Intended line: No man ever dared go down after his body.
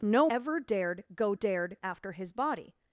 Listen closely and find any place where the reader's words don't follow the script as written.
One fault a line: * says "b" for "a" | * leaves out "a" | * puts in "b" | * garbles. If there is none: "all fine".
* leaves out "man"
* says "dared" for "down"